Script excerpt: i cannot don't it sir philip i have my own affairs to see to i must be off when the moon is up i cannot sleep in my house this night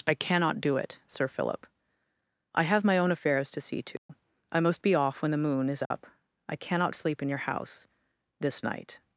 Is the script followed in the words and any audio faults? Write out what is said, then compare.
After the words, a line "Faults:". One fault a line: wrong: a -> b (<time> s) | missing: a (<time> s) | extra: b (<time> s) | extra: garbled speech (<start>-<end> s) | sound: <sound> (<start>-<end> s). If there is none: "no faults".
i cannot do it sir philip i have my own affairs to see to i must be off when the moon is up i cannot sleep in your house this night
Faults:
wrong: don't -> do (0.6 s)
sound: dropout (4.0-4.1 s)
sound: dropout (5.9-5.9 s)
wrong: my -> your (7.3 s)